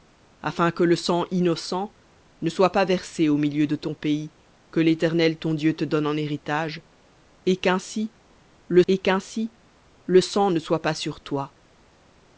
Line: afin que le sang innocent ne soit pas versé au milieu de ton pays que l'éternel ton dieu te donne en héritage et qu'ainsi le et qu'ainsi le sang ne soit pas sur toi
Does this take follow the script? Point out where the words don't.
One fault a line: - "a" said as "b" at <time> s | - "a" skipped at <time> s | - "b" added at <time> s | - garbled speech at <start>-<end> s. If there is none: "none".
none